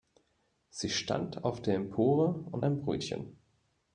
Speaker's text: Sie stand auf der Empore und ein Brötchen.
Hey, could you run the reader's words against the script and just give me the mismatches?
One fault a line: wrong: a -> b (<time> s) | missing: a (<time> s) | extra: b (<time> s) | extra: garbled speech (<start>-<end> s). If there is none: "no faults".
no faults